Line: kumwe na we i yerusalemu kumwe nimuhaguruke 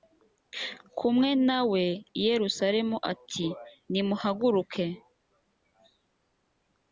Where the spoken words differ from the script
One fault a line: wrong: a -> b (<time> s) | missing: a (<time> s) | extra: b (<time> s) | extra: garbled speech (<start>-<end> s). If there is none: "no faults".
wrong: kumwe -> ati (3.1 s)